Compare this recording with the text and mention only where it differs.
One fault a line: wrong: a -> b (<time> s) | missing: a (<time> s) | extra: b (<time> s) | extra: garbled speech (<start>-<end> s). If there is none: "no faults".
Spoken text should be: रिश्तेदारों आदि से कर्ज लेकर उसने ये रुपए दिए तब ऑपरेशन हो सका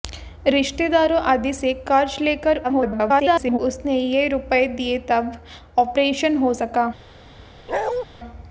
extra: garbled speech (2.6-3.6 s)